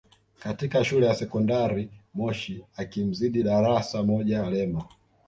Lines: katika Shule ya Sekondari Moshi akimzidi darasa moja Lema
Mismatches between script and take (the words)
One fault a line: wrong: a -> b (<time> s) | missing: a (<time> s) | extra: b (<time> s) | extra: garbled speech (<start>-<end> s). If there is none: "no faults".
no faults